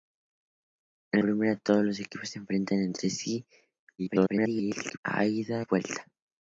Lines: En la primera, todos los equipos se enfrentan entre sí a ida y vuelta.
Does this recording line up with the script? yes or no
no